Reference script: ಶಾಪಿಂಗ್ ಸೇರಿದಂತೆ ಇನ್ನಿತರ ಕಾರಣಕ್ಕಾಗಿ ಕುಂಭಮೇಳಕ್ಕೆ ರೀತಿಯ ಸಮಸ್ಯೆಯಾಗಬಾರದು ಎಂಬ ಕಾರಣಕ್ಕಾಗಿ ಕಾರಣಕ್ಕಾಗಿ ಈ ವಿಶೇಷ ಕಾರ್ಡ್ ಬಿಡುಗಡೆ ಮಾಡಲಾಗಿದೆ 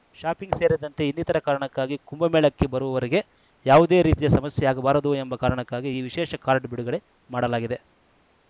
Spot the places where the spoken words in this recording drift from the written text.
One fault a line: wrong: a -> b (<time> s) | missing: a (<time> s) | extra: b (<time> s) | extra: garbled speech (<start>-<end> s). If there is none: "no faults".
extra: ಬರುವವರಿಗೆ ಯಾವುದೇ (2.7 s)
missing: ಕಾರಣಕ್ಕಾಗಿ (5.9 s)